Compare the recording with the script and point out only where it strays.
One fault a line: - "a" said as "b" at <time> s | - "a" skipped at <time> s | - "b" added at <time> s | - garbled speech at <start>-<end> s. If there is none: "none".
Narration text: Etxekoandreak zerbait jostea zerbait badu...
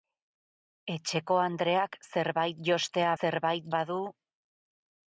none